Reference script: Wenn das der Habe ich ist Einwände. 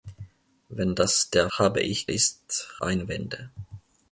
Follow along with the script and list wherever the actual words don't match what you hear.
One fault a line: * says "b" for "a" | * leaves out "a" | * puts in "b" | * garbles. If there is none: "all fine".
all fine